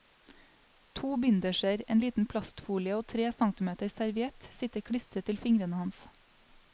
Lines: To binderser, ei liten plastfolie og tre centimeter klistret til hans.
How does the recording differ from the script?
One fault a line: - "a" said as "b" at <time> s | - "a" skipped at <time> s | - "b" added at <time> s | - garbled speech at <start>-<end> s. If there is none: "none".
- "ei" said as "en" at 1.9 s
- "serviett sitter" added at 3.9 s
- "fingrene" added at 5.4 s